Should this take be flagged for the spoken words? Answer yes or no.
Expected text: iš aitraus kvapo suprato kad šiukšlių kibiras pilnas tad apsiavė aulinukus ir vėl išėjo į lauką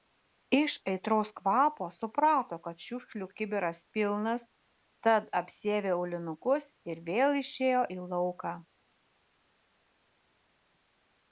no